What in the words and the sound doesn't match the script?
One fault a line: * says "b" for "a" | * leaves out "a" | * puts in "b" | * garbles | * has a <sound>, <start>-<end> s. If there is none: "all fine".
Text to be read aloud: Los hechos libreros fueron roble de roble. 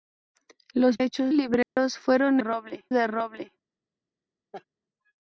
* has a dropout, 1.6-1.8 s
* has a laugh, 4.5-4.6 s